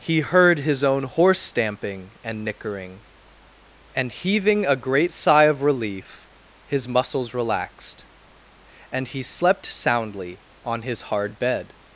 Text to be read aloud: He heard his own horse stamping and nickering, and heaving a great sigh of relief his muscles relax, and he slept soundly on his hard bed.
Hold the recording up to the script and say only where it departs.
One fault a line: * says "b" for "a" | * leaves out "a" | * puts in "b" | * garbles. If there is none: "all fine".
* says "relaxed" for "relax"